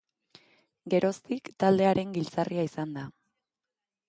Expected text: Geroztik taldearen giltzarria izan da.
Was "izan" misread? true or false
false